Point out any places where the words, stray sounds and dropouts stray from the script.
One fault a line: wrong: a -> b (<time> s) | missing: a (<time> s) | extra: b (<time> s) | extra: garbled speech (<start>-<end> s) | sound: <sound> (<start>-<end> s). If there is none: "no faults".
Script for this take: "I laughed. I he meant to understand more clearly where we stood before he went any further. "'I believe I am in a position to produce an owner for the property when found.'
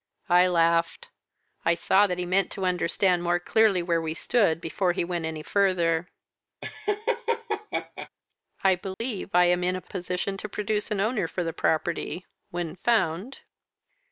extra: saw that (1.8 s)
sound: laugh (6.6-8.1 s)
sound: dropout (8.9-9.0 s)